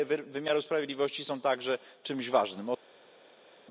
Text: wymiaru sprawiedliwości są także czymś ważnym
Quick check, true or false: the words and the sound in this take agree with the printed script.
true